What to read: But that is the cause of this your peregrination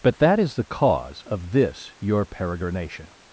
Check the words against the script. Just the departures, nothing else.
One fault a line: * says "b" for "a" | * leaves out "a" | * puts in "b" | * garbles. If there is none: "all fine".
all fine